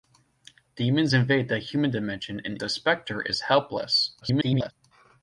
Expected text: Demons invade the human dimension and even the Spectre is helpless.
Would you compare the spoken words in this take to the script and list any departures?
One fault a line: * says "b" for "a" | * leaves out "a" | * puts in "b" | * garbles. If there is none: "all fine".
* leaves out "even"
* garbles